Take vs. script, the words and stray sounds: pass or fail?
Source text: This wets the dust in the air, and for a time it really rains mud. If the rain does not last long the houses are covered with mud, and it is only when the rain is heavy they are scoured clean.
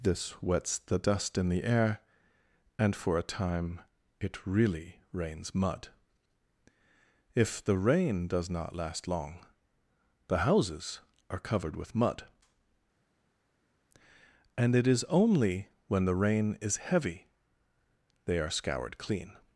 pass